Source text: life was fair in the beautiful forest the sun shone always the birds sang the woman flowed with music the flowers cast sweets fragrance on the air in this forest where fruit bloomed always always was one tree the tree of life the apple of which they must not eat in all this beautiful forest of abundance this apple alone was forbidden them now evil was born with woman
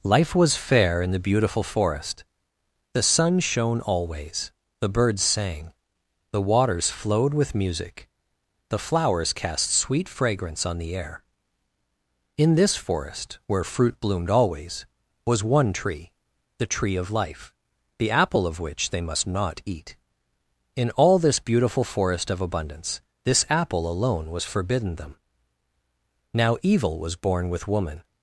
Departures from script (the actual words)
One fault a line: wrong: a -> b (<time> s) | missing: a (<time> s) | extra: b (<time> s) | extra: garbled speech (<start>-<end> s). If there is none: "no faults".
wrong: woman -> waters (6.4 s)
wrong: sweets -> sweet (9.7 s)
missing: always (14.9 s)